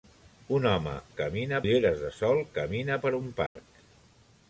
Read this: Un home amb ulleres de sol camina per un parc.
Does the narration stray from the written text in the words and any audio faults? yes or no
yes